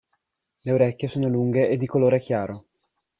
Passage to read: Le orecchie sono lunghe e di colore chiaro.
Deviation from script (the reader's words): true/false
false